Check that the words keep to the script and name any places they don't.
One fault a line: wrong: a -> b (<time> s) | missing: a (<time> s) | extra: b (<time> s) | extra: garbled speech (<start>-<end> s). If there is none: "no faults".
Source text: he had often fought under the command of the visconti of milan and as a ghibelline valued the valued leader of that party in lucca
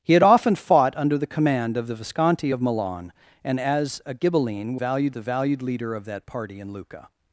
no faults